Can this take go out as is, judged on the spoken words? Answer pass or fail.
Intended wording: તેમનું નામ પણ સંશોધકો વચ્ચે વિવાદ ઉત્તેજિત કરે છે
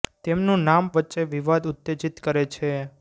fail